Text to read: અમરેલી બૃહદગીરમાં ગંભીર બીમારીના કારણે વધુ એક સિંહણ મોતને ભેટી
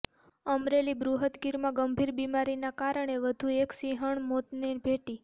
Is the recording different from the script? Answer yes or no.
no